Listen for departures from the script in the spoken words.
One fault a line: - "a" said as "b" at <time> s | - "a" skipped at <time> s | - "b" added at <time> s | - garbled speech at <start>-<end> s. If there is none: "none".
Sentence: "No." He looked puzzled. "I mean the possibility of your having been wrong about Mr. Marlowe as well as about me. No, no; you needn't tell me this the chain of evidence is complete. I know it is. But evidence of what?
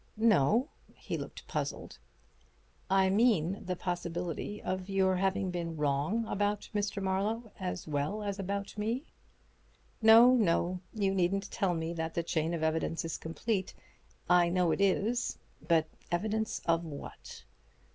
- "this" said as "that" at 11.9 s